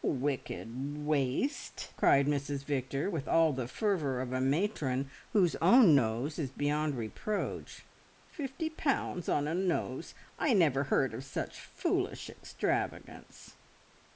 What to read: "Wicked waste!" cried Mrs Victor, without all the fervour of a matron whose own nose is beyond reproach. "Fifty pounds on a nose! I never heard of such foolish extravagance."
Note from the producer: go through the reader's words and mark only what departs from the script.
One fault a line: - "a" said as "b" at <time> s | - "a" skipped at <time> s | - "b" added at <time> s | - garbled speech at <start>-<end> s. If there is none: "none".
- "without" said as "with" at 3.1 s